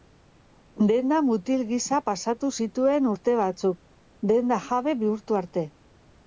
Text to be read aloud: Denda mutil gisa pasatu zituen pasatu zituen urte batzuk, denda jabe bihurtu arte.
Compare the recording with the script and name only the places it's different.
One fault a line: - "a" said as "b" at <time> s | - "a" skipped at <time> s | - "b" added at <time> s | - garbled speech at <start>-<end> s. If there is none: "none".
- "pasatu zituen" skipped at 3.1 s